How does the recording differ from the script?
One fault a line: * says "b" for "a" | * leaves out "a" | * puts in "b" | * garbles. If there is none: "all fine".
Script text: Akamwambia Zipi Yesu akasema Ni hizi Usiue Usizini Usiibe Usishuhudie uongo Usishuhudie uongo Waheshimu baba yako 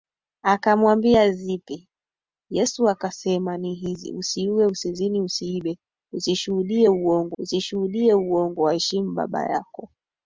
all fine